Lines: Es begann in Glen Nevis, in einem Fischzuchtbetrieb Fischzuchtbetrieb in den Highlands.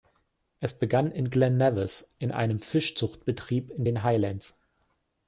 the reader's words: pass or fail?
fail